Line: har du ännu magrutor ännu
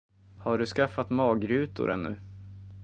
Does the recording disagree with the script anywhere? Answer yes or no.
yes